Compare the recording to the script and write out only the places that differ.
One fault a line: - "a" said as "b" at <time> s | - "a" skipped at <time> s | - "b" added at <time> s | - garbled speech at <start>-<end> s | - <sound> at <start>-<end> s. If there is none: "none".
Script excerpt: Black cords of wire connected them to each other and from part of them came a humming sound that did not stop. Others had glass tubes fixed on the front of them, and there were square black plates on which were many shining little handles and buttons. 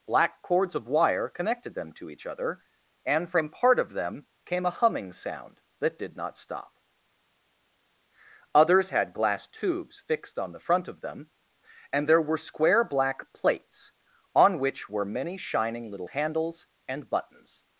none